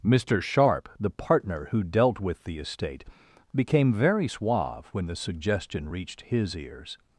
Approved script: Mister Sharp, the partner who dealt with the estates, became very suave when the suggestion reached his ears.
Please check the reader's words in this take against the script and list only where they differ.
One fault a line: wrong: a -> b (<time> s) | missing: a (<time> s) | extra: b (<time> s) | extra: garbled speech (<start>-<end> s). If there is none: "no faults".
wrong: estates -> estate (2.6 s)